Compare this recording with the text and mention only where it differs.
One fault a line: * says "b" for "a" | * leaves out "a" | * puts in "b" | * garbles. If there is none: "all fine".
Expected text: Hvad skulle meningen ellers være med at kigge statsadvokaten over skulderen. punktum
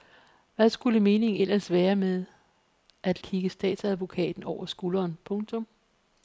all fine